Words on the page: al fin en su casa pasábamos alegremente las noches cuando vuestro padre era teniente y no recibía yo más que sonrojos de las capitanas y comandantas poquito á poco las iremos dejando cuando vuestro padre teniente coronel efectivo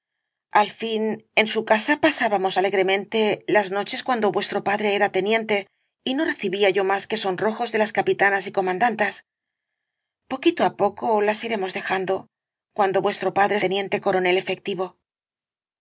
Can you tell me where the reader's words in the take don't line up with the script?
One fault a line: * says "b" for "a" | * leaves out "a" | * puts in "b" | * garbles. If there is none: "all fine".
all fine